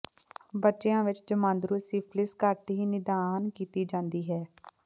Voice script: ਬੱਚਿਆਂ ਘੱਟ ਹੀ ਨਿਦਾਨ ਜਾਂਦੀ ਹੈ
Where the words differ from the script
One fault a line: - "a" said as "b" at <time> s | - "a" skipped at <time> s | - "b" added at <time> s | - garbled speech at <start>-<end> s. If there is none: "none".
- "ਵਿੱਚ ਜਮਾਂਦਰੂ ਸਿਫਿਲਿਸ" added at 1.0 s
- "ਕੀਤੀ" added at 3.5 s